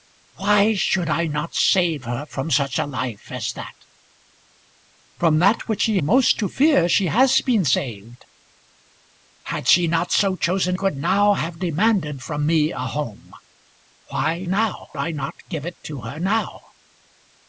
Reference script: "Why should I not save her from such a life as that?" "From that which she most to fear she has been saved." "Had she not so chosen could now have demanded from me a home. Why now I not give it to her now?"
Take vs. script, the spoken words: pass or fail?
pass